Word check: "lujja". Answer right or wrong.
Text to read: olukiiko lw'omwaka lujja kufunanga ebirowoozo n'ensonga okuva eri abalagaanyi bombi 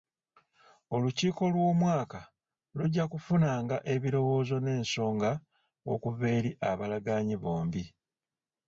right